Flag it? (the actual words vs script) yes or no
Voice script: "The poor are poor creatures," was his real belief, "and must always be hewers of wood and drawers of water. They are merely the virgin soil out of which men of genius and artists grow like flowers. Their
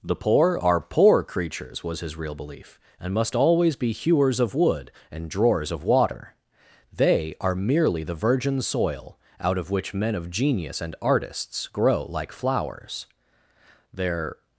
no